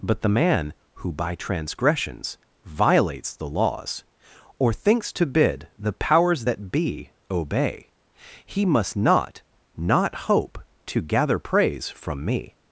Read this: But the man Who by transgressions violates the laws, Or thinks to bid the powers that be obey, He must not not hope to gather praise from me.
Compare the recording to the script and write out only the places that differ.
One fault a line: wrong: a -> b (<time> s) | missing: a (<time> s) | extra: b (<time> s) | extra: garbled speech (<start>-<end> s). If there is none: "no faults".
no faults